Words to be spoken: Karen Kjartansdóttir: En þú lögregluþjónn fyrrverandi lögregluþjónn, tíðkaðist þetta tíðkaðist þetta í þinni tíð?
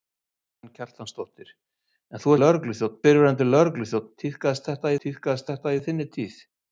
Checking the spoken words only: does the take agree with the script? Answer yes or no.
yes